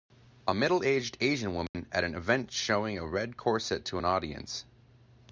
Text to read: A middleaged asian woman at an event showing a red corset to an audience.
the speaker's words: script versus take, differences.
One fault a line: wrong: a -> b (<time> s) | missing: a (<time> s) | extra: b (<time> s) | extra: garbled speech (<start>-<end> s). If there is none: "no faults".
no faults